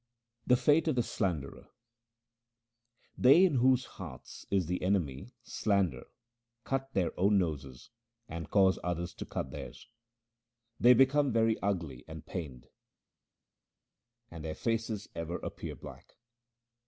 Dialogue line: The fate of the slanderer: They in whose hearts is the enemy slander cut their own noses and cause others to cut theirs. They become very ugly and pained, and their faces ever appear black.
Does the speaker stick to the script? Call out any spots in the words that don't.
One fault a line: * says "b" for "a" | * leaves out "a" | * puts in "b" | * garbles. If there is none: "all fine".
all fine